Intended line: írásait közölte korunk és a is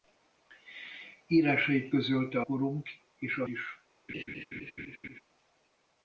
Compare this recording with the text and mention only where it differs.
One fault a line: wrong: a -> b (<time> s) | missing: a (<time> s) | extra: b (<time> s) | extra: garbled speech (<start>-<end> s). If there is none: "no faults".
no faults